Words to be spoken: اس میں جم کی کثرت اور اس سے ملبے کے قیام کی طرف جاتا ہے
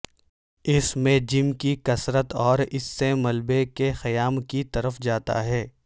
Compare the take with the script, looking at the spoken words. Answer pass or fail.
pass